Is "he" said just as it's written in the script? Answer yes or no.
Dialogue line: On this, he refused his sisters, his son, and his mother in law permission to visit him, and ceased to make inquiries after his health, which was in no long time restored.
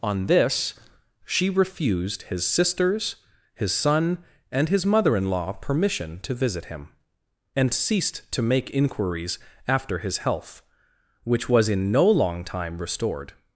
no